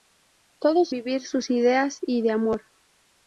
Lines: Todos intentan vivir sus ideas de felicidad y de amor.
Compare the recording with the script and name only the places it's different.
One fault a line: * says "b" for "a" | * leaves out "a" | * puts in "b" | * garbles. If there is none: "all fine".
* leaves out "intentan"
* leaves out "de felicidad"